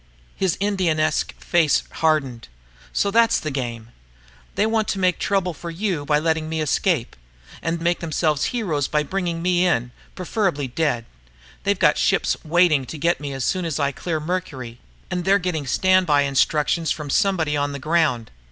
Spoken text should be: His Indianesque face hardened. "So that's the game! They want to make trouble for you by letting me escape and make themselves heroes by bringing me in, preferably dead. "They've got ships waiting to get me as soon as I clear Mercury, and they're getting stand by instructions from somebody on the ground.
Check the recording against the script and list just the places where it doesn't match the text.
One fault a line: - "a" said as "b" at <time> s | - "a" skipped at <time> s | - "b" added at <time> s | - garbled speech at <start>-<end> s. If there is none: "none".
none